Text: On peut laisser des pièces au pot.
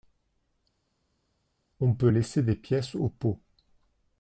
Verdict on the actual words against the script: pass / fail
pass